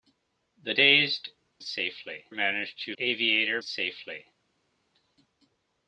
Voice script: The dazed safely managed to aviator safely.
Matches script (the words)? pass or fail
pass